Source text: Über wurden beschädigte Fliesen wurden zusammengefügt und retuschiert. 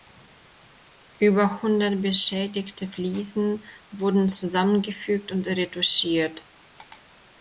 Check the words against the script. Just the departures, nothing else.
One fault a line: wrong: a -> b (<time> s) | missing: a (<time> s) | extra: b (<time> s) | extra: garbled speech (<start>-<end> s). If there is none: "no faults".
wrong: wurden -> hundert (1.6 s)